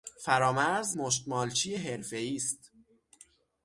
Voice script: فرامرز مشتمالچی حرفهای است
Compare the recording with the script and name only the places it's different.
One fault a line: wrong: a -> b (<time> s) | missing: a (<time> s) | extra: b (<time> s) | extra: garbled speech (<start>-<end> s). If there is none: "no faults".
no faults